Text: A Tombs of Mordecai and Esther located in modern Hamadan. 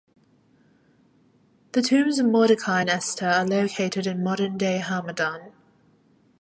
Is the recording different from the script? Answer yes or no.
yes